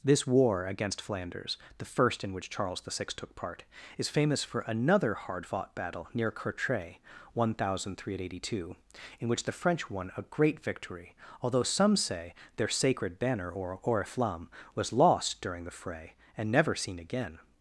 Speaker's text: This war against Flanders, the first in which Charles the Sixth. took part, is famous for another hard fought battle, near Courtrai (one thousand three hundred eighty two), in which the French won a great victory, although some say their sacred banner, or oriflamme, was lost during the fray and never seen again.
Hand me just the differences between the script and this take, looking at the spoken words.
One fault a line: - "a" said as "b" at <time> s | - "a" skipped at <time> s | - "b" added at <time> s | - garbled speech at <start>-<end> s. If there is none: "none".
none